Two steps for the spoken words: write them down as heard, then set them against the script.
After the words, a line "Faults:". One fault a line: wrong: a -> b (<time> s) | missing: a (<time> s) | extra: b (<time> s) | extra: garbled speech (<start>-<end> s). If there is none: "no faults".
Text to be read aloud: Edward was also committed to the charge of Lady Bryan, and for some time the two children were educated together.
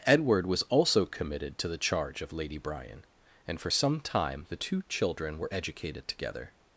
Edward was also committed to the charge of Lady Bryan, and for some time the two children were educated together.
Faults:
no faults